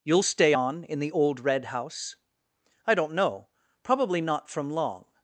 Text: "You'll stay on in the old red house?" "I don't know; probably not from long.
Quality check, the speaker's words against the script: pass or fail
pass